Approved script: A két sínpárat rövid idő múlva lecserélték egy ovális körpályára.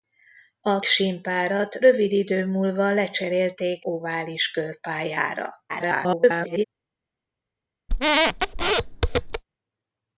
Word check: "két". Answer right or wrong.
wrong